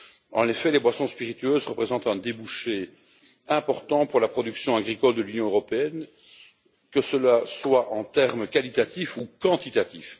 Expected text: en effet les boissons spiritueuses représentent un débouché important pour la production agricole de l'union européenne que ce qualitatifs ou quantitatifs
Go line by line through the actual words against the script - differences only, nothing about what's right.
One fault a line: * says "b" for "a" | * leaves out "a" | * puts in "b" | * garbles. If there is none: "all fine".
* puts in "soit en termes"